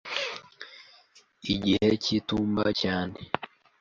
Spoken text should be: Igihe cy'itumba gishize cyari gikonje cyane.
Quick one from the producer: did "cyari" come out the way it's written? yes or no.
no